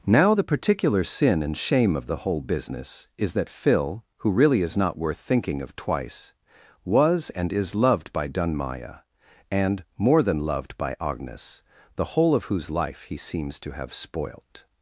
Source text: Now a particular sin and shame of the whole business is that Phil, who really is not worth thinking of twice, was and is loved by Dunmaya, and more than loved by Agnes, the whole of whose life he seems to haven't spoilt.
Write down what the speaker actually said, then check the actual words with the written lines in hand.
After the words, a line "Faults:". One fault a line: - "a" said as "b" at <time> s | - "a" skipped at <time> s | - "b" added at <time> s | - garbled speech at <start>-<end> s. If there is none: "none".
Now the particular sin and shame of the whole business is that Phil, who really is not worth thinking of twice, was and is loved by Dunmaya, and more than loved by Agnes, the whole of whose life he seems to have spoilt.
Faults:
- "a" said as "the" at 0.3 s
- "haven't" said as "have" at 13.7 s